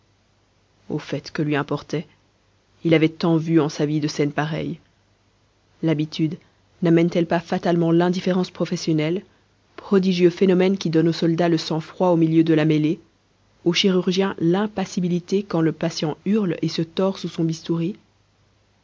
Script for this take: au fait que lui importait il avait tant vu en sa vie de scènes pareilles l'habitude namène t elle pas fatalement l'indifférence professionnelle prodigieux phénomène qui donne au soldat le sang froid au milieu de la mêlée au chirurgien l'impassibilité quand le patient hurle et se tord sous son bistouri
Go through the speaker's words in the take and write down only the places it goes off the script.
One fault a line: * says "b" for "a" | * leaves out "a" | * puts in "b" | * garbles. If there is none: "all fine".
all fine